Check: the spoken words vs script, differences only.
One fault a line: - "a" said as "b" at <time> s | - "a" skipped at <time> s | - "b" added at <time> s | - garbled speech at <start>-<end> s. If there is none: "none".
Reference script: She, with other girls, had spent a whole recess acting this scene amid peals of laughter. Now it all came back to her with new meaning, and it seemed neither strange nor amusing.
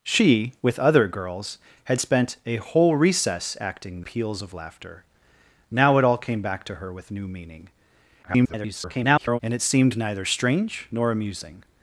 - "this scene amid" skipped at 4.0 s
- garbled speech at 8.2-9.4 s